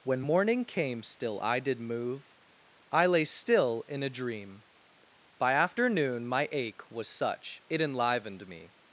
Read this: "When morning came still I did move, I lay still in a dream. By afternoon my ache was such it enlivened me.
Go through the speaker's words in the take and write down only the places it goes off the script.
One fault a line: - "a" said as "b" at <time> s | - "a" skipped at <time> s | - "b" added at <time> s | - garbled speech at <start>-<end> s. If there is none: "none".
none